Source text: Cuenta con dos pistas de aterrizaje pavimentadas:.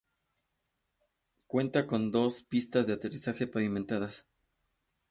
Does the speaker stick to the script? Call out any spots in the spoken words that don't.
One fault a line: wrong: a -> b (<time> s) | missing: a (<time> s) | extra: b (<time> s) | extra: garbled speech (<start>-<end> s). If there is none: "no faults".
no faults